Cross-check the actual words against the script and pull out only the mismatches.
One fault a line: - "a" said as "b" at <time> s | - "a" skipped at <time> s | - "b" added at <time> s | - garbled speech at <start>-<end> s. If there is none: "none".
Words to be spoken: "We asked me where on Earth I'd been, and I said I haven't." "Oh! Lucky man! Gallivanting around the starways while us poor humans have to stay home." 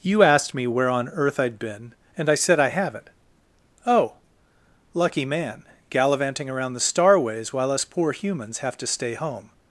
- "We" said as "You" at 0.0 s